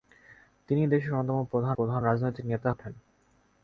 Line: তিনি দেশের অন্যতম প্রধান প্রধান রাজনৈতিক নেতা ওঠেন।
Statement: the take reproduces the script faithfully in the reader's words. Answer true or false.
true